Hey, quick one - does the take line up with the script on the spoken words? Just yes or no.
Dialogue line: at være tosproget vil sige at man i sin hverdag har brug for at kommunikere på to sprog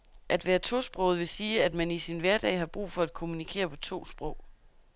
yes